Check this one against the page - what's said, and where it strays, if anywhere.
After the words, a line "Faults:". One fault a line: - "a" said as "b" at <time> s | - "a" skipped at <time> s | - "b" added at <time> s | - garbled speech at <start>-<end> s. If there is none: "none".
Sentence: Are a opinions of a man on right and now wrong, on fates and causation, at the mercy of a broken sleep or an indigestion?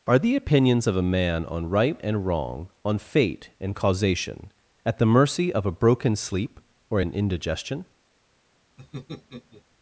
Are the opinions of a man on right and wrong, on fate and causation, at the mercy of a broken sleep or an indigestion?
Faults:
- "a" said as "the" at 0.2 s
- "now" skipped at 2.2 s
- "fates" said as "fate" at 3.0 s